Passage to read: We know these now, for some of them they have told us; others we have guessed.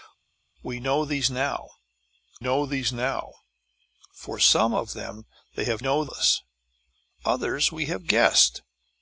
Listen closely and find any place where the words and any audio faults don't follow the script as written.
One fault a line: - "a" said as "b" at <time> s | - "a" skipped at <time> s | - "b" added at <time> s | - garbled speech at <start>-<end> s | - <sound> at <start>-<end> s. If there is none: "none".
- "know these now" added at 2.4 s
- "told" said as "know" at 5.8 s